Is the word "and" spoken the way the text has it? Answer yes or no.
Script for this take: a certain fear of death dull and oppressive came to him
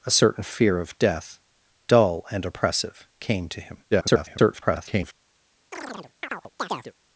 yes